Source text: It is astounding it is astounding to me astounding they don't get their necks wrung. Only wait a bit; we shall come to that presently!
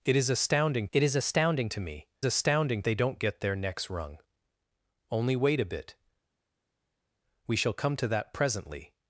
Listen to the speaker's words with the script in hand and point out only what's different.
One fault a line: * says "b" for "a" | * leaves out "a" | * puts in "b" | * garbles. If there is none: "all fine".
all fine